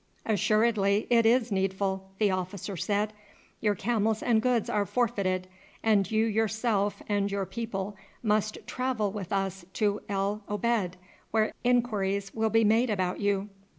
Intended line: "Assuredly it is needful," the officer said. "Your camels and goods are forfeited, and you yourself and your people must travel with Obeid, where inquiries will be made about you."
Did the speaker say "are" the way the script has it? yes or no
yes